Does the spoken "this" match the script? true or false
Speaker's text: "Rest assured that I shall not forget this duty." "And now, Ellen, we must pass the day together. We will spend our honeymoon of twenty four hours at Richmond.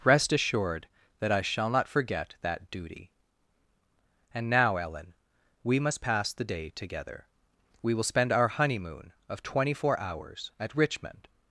false